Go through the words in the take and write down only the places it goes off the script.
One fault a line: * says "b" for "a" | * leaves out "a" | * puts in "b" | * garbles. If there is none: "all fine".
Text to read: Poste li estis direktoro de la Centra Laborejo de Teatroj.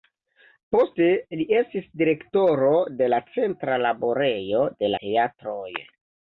all fine